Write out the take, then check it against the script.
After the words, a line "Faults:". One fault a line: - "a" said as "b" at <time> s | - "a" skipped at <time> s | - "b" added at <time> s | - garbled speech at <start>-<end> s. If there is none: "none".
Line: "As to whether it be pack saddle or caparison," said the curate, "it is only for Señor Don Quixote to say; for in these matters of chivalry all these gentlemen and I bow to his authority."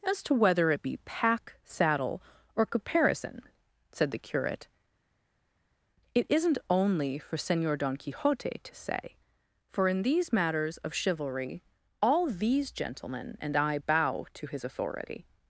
"As to whether it be pack saddle or caparison," said the curate, "it isn't only for Señor Don Quixote to say; for in these matters of chivalry all these gentlemen and I bow to his authority."
Faults:
- "is" said as "isn't" at 6.3 s